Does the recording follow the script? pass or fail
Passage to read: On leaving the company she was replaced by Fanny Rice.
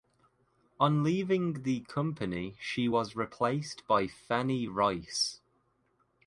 pass